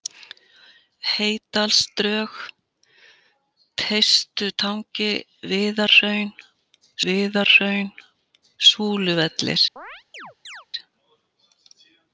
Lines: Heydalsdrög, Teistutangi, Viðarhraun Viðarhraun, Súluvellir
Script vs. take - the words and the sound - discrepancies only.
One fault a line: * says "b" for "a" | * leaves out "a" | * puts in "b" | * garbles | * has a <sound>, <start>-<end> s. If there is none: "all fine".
* has a chirp, 9.8-10.7 s